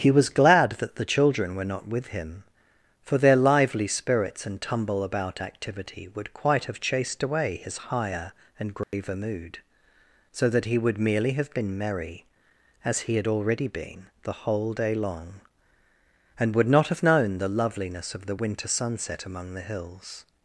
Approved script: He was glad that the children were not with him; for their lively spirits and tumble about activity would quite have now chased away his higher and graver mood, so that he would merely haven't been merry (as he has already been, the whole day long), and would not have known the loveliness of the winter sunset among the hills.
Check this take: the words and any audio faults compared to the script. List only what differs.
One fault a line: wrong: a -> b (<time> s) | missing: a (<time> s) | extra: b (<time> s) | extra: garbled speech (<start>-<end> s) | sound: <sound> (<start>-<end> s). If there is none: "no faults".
missing: now (6.8 s)
sound: dropout (8.8-8.9 s)
wrong: haven't -> have (11.3 s)
wrong: has -> had (13.1 s)